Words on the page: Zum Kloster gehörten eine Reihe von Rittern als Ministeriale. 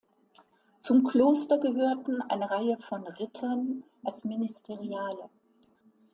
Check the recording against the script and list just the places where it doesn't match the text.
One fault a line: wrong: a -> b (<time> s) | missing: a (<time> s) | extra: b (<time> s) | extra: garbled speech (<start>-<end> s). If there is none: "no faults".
no faults